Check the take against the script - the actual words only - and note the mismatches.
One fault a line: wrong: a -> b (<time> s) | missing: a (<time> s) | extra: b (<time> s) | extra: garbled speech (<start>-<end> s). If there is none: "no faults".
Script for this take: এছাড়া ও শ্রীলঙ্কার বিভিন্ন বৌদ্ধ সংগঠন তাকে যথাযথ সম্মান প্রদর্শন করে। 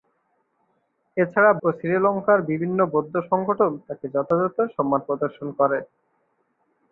no faults